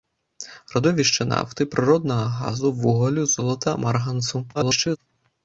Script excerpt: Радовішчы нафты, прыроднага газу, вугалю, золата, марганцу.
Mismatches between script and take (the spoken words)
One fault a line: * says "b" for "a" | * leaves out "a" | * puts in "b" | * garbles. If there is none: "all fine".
* garbles